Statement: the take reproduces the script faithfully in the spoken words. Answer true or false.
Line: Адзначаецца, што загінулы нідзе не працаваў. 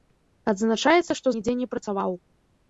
false